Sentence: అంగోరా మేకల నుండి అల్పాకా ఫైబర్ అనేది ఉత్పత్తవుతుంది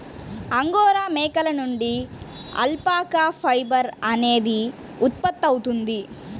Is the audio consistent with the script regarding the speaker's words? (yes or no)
yes